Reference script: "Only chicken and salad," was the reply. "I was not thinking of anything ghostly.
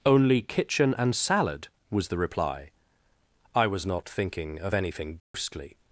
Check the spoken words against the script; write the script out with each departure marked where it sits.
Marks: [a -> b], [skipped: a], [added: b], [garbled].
"Only [chicken -> kitchen] and salad," was the reply. "I was not thinking of anything ghostly.